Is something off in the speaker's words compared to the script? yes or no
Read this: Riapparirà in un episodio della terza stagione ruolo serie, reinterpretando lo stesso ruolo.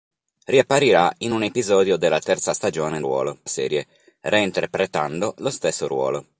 no